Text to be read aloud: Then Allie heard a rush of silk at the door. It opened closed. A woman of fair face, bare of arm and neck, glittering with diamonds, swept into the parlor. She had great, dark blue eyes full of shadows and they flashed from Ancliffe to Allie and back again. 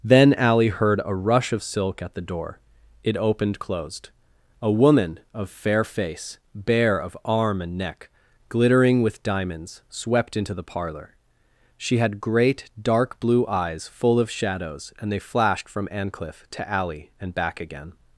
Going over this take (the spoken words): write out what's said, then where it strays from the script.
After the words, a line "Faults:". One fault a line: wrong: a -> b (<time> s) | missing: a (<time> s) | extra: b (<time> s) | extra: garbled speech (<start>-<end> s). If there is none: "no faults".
Then Allie heard a rush of silk at the door. It opened closed. A woman of fair face, bare of arm and neck, glittering with diamonds, swept into the parlor. She had great, dark blue eyes full of shadows and they flashed from Ancliffe to Allie and back again.
Faults:
no faults